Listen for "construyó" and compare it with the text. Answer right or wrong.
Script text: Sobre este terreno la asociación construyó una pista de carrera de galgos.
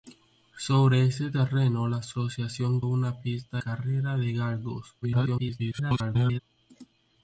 wrong